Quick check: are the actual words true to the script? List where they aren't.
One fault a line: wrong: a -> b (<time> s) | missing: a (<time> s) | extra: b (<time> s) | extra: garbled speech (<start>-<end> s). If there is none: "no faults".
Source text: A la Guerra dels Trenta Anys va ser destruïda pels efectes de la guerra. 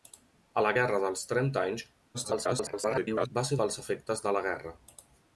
extra: garbled speech (2.1-3.3 s)
missing: destruïda (3.6 s)